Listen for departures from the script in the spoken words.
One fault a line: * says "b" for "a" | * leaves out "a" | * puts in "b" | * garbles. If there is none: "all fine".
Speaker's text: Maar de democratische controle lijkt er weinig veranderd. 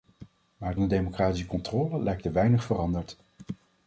all fine